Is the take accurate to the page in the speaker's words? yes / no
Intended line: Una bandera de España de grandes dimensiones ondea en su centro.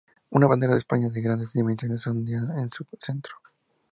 yes